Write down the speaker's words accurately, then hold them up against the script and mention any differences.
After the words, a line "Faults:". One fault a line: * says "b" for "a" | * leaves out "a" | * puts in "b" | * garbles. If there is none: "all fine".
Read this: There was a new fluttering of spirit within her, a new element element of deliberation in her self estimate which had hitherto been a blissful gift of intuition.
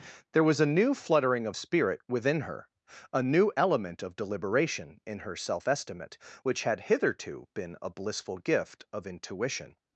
There was a new fluttering of spirit within her, a new element of deliberation in her self estimate which had hitherto been a blissful gift of intuition.
Faults:
* leaves out "element"